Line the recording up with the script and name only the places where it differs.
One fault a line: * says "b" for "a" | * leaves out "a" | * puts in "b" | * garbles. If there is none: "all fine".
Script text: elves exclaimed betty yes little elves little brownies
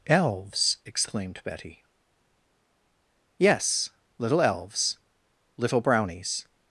all fine